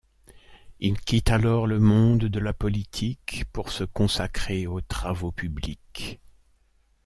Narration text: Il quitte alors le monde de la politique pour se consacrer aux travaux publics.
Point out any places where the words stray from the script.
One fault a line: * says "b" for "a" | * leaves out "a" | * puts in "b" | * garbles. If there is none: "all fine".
all fine